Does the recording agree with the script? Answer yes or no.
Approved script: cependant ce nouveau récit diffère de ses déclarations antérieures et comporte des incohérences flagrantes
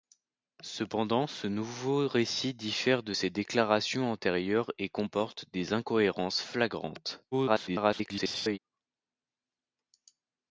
no